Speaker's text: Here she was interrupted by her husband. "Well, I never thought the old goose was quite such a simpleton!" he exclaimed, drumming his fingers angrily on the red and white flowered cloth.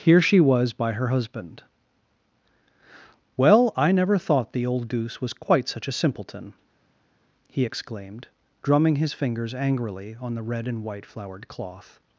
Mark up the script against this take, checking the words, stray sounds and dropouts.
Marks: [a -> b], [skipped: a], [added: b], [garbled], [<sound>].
Here she was [skipped: interrupted] by her husband. "Well, I never thought the old goose was quite such a simpleton!" he exclaimed, drumming his fingers angrily on the red and white flowered cloth.